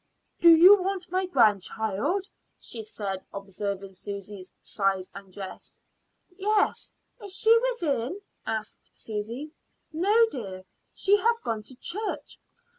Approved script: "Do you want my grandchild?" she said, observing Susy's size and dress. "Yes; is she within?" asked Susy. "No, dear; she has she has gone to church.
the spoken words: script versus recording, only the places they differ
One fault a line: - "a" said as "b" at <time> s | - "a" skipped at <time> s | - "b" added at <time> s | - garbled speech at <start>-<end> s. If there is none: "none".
- "she has" skipped at 11.4 s